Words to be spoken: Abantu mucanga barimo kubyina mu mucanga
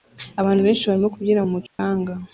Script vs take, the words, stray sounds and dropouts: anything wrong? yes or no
yes